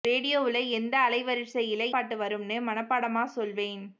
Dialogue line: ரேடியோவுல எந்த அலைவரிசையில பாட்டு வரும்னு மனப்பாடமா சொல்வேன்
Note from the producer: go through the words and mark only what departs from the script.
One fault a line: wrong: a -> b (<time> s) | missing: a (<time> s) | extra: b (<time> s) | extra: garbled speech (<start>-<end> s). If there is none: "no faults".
no faults